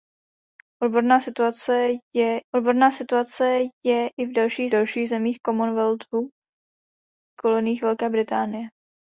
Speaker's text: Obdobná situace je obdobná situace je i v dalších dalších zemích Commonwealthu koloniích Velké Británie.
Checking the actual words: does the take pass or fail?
pass